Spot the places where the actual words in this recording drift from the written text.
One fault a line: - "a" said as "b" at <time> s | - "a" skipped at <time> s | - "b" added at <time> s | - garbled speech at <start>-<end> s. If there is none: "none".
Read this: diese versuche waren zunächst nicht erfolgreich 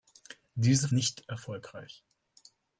- "versuche waren zunächst" skipped at 0.9 s